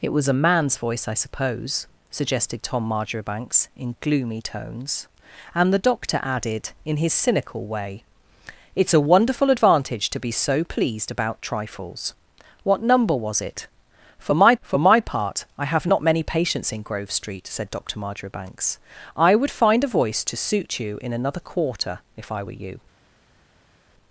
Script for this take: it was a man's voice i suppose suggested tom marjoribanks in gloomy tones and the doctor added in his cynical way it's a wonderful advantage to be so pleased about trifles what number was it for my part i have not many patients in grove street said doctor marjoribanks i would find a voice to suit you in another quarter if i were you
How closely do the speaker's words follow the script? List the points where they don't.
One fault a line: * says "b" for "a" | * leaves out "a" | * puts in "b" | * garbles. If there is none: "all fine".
* puts in "for my"